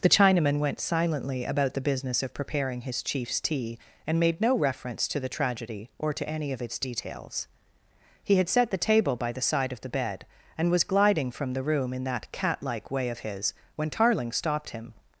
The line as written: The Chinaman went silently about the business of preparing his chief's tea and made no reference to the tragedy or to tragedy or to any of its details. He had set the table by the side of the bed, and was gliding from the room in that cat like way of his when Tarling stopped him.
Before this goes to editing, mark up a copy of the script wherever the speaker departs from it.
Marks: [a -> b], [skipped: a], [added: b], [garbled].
The Chinaman went silently about the business of preparing his chief's tea and made no reference to the tragedy or to [skipped: tragedy or to] any of its details. He had set the table by the side of the bed, and was gliding from the room in that cat like way of his when Tarling stopped him.